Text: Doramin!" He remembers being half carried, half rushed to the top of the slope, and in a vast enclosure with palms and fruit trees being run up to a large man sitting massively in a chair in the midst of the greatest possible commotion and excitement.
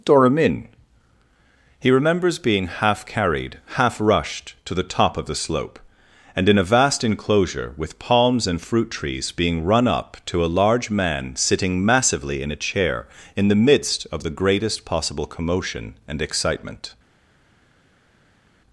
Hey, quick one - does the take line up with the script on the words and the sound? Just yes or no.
yes